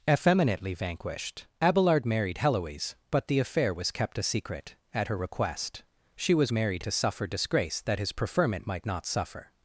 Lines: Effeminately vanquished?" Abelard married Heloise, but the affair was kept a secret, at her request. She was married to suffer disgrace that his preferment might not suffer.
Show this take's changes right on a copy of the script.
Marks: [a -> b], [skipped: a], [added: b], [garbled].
Effeminately vanquished?" Abelard married Heloise, but the affair was kept a secret, at her request. She was married to suffer disgrace that his preferment might not suffer.